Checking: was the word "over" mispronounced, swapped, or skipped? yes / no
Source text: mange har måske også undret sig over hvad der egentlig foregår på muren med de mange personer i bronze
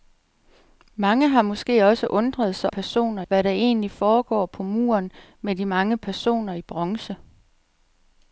yes